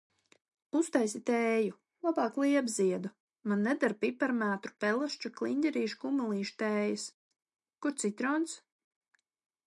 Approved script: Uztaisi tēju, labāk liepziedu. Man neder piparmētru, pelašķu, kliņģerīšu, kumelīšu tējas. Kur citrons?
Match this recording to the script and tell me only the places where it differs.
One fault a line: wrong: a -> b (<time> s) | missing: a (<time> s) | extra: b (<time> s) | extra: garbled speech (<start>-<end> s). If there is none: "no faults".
no faults